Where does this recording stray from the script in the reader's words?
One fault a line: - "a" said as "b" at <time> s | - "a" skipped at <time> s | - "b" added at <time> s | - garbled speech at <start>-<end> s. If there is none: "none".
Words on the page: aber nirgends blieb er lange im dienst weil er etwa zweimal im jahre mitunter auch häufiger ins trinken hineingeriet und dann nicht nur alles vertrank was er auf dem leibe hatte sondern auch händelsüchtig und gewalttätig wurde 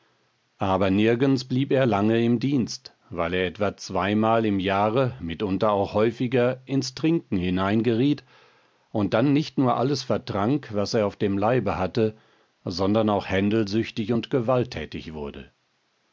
none